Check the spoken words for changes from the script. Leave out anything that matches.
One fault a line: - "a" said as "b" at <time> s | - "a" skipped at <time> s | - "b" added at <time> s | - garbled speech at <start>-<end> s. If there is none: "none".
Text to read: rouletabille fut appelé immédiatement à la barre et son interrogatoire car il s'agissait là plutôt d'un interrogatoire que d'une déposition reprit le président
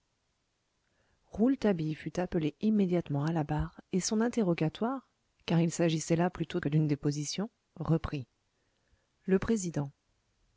- "d'un interrogatoire" skipped at 6.6 s